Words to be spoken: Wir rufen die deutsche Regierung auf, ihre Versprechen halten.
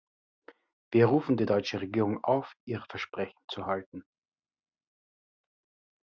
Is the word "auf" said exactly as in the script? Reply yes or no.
yes